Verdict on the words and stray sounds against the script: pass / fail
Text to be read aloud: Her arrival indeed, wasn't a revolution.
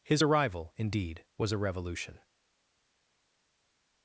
fail